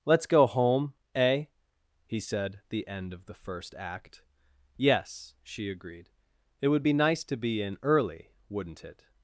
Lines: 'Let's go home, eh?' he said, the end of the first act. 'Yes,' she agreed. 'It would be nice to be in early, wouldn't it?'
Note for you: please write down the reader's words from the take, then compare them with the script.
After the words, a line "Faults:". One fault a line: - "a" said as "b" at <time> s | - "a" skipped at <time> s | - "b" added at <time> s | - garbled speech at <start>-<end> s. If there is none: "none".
'Let's go home, eh?' he said, the end of the first act. 'Yes,' she agreed. 'It would be nice to be in early, wouldn't it?'
Faults:
none